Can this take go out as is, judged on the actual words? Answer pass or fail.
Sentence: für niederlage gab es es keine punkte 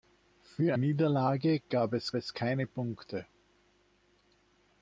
pass